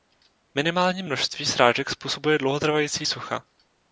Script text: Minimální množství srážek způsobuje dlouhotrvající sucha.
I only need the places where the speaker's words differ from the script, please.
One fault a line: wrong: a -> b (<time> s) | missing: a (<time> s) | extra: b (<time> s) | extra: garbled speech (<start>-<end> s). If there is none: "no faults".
no faults